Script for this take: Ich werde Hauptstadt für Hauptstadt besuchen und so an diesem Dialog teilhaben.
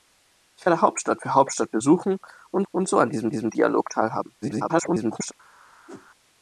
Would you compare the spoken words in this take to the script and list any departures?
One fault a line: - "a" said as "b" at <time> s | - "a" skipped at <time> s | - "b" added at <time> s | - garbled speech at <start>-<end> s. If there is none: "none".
- "und" added at 2.7 s
- "diesem" added at 3.3 s
- garbled speech at 4.4-5.3 s